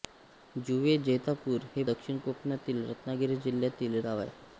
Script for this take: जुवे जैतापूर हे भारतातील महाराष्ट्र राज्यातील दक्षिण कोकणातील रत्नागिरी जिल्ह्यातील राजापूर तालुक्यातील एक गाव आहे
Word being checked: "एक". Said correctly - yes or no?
no